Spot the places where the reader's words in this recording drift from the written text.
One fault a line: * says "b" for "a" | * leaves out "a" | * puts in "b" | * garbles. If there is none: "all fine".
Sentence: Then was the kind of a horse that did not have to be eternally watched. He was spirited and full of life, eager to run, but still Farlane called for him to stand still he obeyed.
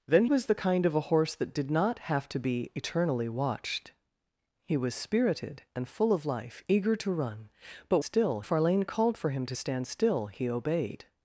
all fine